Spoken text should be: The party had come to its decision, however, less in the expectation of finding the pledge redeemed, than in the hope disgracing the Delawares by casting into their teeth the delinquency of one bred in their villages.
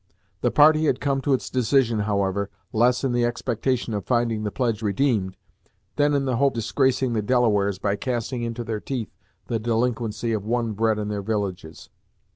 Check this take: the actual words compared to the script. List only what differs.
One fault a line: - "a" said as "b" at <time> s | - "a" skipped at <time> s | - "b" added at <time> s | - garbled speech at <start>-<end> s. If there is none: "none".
none